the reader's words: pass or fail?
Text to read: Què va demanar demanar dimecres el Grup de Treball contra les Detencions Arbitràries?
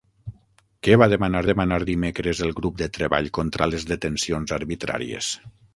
pass